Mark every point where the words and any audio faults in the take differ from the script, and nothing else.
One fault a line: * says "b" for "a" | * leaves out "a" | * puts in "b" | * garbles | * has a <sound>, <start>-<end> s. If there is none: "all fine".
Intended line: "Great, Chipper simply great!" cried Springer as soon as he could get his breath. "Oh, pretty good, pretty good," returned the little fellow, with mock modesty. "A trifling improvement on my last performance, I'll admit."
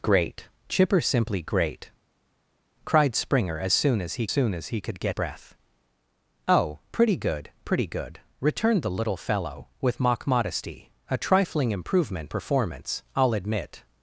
* puts in "soon as he"
* leaves out "his"
* leaves out "on my last"